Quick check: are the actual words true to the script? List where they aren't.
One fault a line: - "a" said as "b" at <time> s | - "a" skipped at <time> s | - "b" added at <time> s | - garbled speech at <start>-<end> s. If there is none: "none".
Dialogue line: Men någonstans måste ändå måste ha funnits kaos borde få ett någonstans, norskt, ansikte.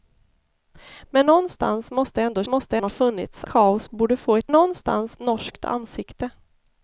none